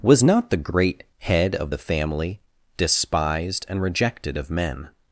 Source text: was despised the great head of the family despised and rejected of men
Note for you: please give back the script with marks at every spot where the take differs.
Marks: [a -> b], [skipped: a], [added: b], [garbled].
was [despised -> not] the great head of the family despised and rejected of men